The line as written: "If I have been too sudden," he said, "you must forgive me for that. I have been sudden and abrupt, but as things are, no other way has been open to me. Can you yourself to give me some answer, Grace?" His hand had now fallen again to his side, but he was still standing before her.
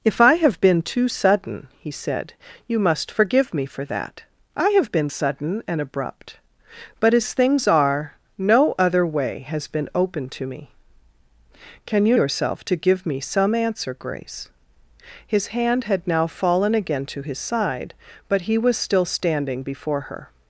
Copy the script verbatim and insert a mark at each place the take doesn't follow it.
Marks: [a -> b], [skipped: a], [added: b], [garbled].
"If I have been too sudden," he said, "you must forgive me for that. I have been sudden and abrupt, but as things are, no other way has been open to me. Can you yourself to give me some answer, Grace?" His hand had now fallen again to his side, but he was still standing before her.